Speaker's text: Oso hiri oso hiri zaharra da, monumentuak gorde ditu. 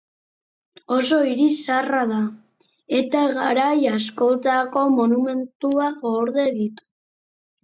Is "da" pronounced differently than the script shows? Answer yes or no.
yes